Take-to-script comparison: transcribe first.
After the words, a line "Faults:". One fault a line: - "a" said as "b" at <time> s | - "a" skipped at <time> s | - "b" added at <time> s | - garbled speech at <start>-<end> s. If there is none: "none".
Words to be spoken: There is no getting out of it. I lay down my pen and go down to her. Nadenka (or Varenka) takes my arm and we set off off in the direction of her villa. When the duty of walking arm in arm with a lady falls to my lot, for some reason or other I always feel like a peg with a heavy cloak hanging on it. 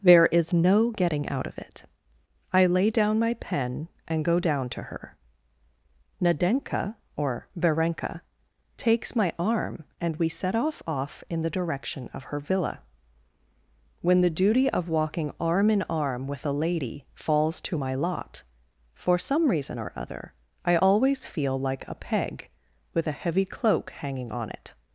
There is no getting out of it. I lay down my pen and go down to her. Nadenka (or Varenka) takes my arm and we set off off in the direction of her villa. When the duty of walking arm in arm with a lady falls to my lot, for some reason or other I always feel like a peg with a heavy cloak hanging on it.
Faults:
none